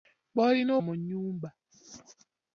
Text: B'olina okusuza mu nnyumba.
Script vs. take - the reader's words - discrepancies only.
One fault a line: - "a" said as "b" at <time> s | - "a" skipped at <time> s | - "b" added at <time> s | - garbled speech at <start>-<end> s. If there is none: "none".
- "okusuza" skipped at 0.7 s